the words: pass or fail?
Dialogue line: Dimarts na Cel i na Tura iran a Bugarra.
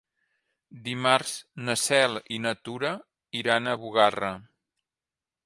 pass